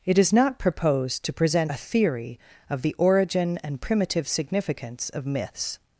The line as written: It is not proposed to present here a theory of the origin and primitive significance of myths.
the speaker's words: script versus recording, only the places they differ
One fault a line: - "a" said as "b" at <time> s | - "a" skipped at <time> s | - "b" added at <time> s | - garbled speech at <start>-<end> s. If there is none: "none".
- "here" skipped at 1.7 s